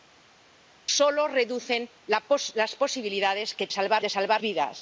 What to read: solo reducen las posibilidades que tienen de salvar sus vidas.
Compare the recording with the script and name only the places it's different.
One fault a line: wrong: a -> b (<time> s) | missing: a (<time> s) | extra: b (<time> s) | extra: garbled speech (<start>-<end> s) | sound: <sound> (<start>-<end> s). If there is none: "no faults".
wrong: tienen -> salvar (3.7 s)
missing: sus (4.4 s)